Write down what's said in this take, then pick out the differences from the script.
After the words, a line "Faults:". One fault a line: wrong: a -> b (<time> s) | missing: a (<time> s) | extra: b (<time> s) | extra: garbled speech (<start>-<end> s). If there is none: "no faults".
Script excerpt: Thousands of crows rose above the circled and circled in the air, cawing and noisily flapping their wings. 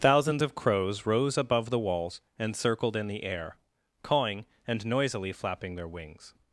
Thousands of crows rose above the walls and circled in the air, cawing and noisily flapping their wings.
Faults:
wrong: circled -> walls (1.8 s)